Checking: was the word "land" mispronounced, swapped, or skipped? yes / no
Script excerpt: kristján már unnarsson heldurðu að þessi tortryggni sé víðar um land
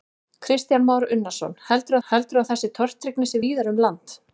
no